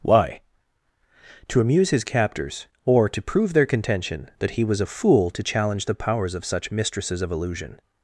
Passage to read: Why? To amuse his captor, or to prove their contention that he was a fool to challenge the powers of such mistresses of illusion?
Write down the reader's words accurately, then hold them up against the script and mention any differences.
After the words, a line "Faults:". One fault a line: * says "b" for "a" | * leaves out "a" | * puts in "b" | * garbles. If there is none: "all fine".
Why? To amuse his captors, or to prove their contention that he was a fool to challenge the powers of such mistresses of illusion?
Faults:
* says "captors" for "captor"